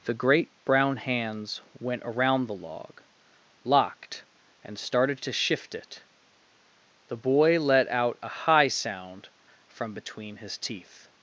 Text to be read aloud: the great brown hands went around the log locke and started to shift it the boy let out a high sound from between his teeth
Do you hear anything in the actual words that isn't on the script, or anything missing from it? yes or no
yes